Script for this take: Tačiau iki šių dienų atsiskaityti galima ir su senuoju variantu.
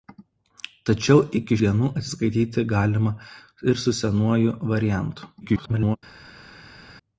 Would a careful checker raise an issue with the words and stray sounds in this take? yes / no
yes